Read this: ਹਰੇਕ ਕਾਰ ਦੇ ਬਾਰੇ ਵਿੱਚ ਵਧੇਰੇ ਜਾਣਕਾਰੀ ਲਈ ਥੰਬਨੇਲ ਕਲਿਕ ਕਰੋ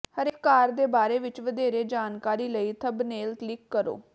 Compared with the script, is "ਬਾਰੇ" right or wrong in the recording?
right